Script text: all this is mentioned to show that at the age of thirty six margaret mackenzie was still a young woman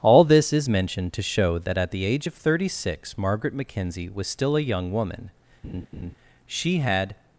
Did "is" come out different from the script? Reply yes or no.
no